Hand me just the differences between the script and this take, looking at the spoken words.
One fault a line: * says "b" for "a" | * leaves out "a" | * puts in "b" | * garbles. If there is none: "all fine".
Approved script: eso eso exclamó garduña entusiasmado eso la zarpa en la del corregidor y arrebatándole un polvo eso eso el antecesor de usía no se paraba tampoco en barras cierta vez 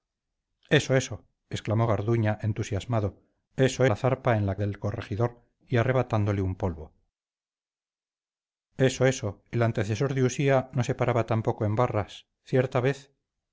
all fine